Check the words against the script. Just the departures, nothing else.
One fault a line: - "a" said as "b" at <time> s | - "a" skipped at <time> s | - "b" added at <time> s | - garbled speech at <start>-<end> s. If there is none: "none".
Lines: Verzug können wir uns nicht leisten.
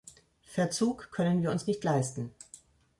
none